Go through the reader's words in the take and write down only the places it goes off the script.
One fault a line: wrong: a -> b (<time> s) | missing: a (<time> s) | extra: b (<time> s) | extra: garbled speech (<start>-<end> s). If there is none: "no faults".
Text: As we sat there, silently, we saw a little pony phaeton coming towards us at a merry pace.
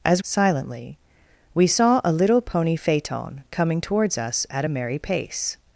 missing: we sat there (0.2 s)